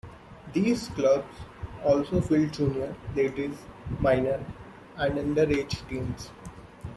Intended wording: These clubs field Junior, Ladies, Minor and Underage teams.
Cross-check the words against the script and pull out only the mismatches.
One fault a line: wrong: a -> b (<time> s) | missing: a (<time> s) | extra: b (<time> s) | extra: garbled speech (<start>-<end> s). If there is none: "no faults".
extra: also (1.9 s)